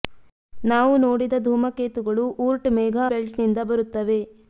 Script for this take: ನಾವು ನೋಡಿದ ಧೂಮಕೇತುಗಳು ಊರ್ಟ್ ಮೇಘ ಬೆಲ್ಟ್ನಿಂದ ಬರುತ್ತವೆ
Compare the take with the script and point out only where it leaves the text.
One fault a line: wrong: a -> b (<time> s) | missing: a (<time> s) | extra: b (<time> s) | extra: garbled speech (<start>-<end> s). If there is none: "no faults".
no faults